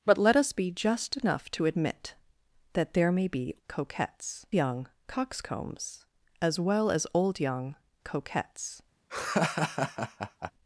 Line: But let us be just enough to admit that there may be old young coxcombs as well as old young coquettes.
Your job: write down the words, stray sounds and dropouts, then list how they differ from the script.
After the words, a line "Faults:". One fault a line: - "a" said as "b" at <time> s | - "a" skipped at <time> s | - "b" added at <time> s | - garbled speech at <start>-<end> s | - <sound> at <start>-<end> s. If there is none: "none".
But let us be just enough to admit that there may be coquettes young coxcombs as well as old young coquettes.
Faults:
- "old" said as "coquettes" at 3.7 s
- laugh at 9.1-10.5 s